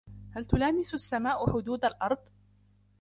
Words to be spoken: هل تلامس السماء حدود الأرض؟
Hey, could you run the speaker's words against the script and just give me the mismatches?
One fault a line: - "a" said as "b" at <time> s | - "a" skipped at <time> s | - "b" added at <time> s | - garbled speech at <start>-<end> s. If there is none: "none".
none